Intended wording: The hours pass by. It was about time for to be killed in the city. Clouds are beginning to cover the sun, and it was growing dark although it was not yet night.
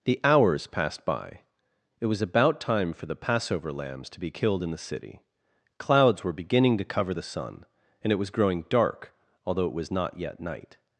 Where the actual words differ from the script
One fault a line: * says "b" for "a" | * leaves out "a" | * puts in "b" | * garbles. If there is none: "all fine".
* says "passed" for "pass"
* puts in "the Passover lambs"
* says "were" for "are"